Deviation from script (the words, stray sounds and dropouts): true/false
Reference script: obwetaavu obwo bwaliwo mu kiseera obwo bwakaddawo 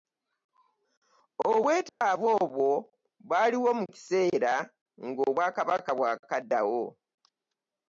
true